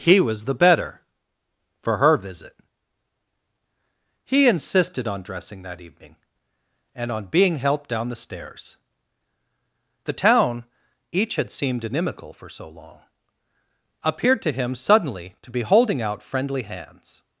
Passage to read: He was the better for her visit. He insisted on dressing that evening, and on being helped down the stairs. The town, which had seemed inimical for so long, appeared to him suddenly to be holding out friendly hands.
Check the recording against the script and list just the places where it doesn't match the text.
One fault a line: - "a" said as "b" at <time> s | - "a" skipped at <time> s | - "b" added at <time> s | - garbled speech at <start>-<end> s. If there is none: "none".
- "which" said as "each" at 11.1 s